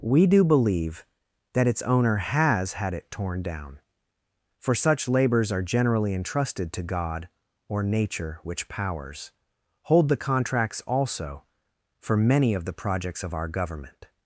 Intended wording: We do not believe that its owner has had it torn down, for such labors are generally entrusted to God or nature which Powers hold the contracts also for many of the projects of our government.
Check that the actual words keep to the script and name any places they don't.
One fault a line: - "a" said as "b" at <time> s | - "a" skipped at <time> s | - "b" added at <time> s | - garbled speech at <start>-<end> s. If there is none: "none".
- "not" skipped at 0.4 s